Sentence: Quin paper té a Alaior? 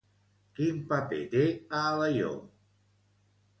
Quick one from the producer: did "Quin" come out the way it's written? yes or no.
yes